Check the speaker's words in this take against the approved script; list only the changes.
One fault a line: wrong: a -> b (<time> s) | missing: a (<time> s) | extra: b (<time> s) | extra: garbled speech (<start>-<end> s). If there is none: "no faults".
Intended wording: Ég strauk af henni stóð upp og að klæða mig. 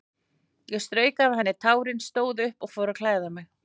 extra: tárin (1.7 s)
extra: fór (2.8 s)